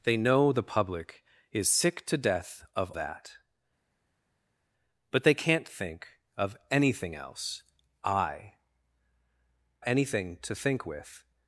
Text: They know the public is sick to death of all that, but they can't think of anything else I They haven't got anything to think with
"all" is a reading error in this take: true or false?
true